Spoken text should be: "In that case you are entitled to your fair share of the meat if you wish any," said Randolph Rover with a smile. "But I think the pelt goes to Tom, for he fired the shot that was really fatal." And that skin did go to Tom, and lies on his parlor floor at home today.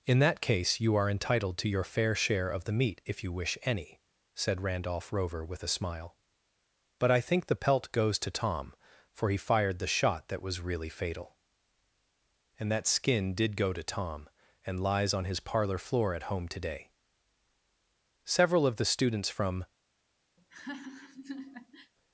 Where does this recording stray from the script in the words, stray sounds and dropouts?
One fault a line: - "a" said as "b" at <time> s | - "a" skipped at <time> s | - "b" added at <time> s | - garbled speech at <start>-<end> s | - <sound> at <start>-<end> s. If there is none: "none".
- "Several of the students from" added at 18.2 s
- laugh at 20.4-21.9 s